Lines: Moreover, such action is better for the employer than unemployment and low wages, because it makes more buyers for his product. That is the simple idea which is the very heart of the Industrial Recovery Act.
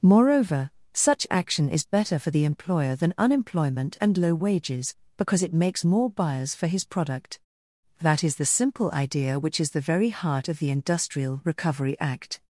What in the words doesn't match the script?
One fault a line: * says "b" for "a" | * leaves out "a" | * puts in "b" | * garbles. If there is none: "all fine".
all fine